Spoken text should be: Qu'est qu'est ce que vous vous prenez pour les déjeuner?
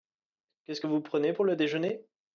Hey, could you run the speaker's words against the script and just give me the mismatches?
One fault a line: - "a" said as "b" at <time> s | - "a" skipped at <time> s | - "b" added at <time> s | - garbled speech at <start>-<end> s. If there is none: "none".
- "qu'est" skipped at 0.8 s
- "vous" skipped at 1.0 s
- "les" said as "le" at 1.4 s